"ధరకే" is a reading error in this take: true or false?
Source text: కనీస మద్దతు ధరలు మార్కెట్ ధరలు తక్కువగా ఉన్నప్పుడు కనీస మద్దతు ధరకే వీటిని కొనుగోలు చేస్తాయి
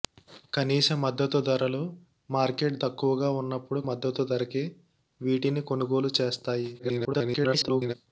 false